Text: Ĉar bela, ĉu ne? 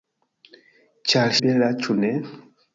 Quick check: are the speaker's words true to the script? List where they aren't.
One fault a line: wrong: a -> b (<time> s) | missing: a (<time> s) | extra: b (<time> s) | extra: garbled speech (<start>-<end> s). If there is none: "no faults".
no faults